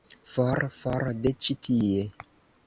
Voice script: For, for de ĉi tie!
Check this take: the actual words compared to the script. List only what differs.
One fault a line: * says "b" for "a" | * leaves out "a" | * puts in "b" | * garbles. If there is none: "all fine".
all fine